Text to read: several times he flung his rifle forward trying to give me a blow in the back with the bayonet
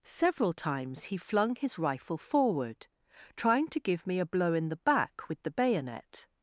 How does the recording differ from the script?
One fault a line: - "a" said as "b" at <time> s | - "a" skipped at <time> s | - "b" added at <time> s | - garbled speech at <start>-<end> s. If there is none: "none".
none